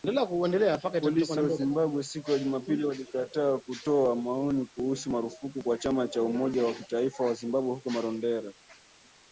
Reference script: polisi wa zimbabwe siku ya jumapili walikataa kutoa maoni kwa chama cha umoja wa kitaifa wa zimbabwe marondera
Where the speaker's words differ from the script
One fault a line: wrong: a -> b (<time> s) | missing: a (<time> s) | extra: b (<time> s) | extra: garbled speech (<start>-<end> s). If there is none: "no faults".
extra: kuhusu marufuku (4.7 s)
extra: huko (7.7 s)